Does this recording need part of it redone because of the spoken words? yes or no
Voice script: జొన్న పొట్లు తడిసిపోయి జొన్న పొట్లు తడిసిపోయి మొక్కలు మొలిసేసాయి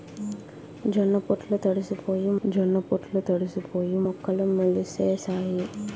no